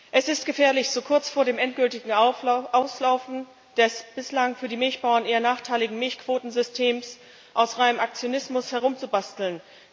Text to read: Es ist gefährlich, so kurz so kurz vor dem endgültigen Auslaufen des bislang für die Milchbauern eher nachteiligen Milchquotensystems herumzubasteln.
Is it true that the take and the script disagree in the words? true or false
true